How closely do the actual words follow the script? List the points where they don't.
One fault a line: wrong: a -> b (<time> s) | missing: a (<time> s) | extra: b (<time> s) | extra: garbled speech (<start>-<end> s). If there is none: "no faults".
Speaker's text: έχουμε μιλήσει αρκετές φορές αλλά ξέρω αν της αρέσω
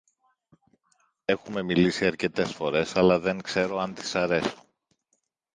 extra: δεν (3.2 s)